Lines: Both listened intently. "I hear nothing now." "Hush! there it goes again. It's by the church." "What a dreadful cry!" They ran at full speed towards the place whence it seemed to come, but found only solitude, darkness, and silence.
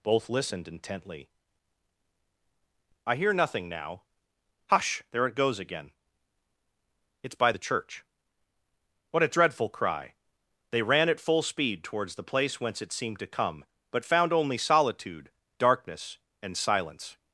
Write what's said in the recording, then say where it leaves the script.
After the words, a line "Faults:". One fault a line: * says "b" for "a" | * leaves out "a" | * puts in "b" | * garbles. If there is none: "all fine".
Both listened intently. "I hear nothing now." "Hush! there it goes again. It's by the church." "What a dreadful cry!" They ran at full speed towards the place whence it seemed to come, but found only solitude, darkness, and silence.
Faults:
all fine